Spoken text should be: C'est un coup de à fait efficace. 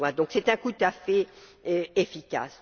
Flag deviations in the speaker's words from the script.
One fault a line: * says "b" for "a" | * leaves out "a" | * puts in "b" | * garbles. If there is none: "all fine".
all fine